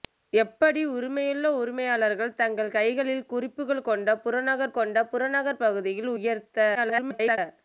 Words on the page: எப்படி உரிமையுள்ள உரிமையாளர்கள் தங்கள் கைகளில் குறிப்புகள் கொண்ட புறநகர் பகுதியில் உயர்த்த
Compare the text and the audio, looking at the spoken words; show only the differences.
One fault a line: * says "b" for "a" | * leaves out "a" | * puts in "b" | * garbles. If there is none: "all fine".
* puts in "கொண்ட புறநகர்"
* garbles